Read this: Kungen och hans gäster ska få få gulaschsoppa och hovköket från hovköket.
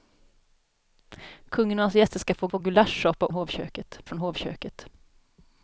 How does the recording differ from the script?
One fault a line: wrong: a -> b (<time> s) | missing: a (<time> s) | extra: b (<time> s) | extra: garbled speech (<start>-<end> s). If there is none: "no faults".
no faults